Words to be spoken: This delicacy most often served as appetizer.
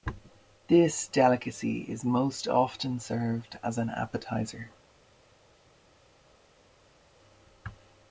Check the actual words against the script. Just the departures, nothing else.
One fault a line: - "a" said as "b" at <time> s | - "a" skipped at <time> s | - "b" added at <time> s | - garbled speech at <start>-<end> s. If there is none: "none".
- "is" added at 1.8 s
- "an" added at 3.8 s